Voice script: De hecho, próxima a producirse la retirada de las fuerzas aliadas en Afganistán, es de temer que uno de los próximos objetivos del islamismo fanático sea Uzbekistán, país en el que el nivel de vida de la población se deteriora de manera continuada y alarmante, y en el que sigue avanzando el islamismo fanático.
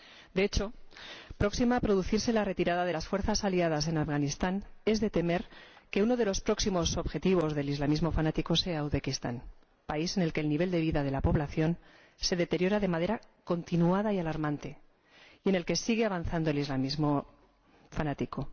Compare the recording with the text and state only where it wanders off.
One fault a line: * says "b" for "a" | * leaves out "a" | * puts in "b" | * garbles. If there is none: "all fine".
all fine